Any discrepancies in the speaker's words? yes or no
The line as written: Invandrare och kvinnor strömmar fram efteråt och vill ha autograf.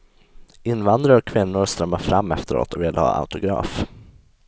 no